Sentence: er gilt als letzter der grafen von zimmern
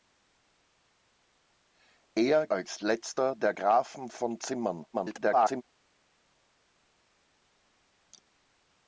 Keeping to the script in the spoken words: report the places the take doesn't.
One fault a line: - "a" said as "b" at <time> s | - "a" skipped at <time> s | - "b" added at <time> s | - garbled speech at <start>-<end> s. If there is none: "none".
- "gilt" skipped at 2.5 s
- garbled speech at 4.9-5.6 s